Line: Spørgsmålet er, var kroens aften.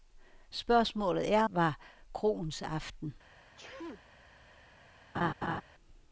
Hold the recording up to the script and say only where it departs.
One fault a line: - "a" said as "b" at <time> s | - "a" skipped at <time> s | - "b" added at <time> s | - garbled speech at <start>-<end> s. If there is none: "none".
none